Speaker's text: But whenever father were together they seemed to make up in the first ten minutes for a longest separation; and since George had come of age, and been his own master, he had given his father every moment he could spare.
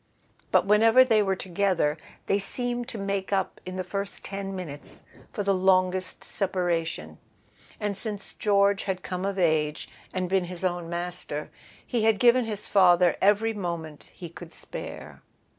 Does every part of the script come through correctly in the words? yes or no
no